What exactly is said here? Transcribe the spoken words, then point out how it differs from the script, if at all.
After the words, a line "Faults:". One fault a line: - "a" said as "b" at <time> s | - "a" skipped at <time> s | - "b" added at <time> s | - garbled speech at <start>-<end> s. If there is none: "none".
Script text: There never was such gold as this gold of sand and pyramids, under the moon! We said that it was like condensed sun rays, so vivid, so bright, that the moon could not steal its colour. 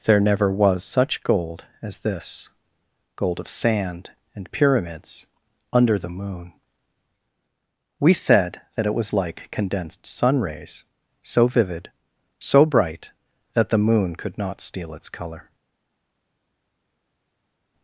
There never was such gold as this gold of sand and pyramids, under the moon! We said that it was like condensed sun rays, so vivid, so bright, that the moon could not steal its colour.
Faults:
none